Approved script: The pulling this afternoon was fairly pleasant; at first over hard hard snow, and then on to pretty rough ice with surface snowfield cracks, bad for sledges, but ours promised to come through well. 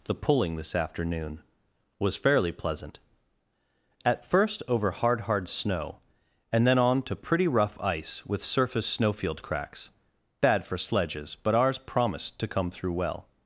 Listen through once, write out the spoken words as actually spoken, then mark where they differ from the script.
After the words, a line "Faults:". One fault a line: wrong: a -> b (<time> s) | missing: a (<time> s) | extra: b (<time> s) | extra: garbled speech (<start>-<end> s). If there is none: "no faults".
The pulling this afternoon was fairly pleasant; at first over hard hard snow, and then on to pretty rough ice with surface snowfield cracks, bad for sledges, but ours promised to come through well.
Faults:
no faults